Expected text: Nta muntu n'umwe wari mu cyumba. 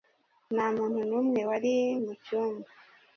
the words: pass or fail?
pass